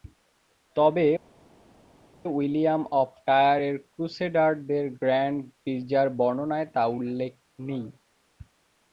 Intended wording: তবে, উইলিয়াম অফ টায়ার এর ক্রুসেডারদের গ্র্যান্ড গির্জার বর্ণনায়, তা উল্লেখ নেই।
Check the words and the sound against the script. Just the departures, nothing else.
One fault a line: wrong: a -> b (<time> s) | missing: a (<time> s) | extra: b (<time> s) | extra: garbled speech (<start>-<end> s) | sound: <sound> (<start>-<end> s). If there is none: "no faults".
no faults